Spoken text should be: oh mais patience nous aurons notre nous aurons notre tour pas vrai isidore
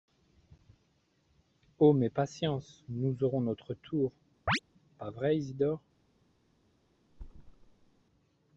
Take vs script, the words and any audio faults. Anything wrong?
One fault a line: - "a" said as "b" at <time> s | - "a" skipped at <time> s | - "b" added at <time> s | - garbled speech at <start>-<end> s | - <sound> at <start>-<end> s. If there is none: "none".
- "nous aurons notre" skipped at 3.7 s
- chirp at 4.5-4.6 s
- thud at 7.1-8.0 s